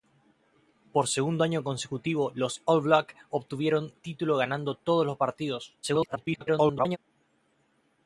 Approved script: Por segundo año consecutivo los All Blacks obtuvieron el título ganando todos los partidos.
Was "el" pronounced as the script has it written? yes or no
no